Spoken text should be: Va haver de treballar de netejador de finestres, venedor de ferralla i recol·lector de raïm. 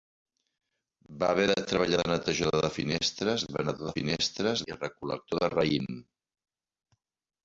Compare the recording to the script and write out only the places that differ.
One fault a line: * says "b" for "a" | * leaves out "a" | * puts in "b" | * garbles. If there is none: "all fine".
* says "finestres" for "ferralla"